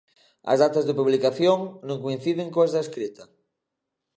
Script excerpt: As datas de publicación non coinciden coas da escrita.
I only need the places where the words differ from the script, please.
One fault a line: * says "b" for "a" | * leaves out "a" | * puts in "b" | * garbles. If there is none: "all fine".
all fine